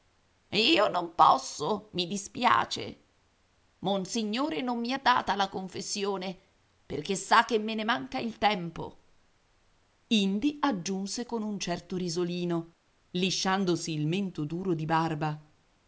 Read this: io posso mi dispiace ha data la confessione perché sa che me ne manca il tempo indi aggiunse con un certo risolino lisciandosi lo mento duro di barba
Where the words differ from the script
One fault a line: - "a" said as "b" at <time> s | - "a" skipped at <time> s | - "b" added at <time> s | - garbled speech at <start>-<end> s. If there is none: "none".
- "non" added at 0.9 s
- "monsignore non mi" added at 3.8 s
- "lo" said as "il" at 13.9 s